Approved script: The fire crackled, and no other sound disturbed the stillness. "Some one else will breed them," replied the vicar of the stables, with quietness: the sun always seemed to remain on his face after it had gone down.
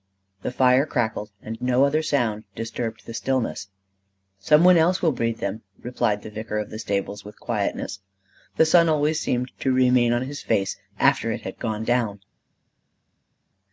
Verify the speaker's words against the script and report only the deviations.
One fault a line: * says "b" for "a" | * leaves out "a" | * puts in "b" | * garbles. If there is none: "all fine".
all fine